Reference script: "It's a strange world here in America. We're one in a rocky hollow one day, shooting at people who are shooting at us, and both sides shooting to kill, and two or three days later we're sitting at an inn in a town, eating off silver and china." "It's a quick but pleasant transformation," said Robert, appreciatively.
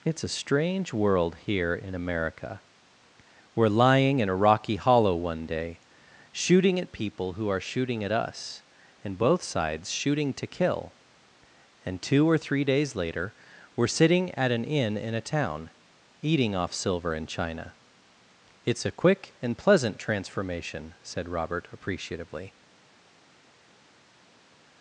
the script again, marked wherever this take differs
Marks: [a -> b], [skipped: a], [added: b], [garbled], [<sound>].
"It's a strange world here in America. We're [one -> lying] in a rocky hollow one day, shooting at people who are shooting at us, and both sides shooting to kill, and two or three days later we're sitting at an inn in a town, eating off silver and china." "It's a quick [but -> and] pleasant transformation," said Robert, appreciatively.